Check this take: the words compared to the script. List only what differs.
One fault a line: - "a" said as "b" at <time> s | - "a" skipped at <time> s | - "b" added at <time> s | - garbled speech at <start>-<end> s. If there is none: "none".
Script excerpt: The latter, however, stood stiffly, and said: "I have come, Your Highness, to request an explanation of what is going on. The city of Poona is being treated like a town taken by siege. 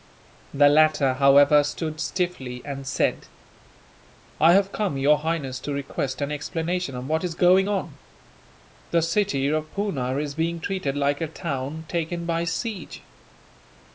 none